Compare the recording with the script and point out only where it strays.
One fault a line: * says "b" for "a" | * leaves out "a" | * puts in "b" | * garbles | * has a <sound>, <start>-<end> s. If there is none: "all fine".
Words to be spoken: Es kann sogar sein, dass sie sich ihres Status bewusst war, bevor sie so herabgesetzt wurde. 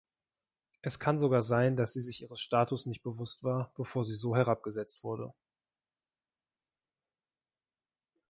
* puts in "nicht"